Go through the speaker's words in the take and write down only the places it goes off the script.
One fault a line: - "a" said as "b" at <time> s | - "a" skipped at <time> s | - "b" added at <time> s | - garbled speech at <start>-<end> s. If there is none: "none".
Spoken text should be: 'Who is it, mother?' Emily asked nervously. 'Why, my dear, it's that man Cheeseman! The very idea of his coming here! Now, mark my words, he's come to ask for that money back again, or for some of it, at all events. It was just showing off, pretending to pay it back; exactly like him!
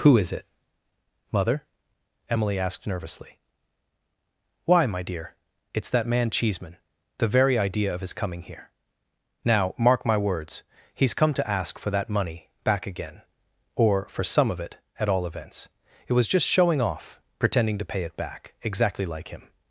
none